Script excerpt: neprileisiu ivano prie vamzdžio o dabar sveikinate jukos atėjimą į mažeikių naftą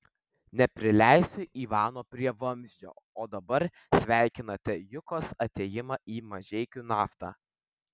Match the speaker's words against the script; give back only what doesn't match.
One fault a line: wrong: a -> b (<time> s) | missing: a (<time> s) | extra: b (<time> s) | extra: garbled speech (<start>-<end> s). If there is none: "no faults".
no faults